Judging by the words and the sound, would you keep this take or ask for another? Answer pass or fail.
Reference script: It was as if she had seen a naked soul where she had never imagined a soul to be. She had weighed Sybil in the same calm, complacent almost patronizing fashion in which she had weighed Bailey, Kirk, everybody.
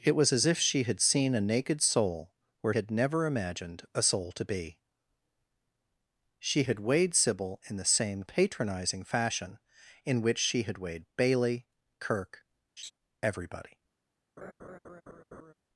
fail